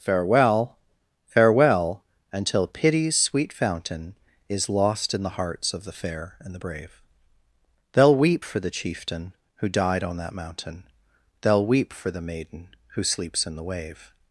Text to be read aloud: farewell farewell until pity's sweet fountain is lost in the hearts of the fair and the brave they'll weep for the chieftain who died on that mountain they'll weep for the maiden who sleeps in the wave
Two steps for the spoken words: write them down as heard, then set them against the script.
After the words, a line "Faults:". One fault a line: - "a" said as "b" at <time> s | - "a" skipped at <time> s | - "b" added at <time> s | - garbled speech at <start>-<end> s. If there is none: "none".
farewell farewell until pity's sweet fountain is lost in the hearts of the fair and the brave they'll weep for the chieftain who died on that mountain they'll weep for the maiden who sleeps in the wave
Faults:
none